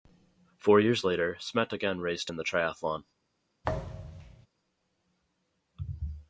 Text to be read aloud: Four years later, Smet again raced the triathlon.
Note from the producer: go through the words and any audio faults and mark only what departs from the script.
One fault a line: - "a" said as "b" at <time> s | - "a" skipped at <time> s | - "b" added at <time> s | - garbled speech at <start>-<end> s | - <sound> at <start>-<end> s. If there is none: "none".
- "in" added at 2.3 s
- thud at 3.6-4.5 s